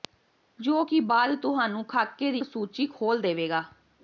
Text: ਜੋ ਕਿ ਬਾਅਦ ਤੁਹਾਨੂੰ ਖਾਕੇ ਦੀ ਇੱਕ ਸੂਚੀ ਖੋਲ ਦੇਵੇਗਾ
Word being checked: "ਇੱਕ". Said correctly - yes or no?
no